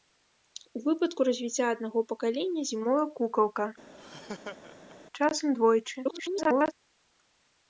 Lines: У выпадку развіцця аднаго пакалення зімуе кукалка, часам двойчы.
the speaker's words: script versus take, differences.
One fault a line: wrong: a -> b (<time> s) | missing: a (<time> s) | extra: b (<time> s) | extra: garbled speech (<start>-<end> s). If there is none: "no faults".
extra: garbled speech (6.0-6.7 s)